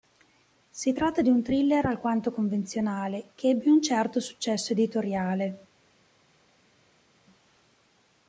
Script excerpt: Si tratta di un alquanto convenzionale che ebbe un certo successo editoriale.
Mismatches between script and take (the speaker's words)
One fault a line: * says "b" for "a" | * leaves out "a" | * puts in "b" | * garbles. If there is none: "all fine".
* puts in "thriller"